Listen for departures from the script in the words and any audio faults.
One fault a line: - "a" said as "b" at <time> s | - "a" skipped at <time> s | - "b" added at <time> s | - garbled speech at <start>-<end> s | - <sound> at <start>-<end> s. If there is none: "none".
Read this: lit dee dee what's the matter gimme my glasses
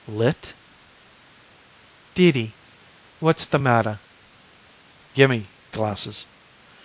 - "my" skipped at 5.5 s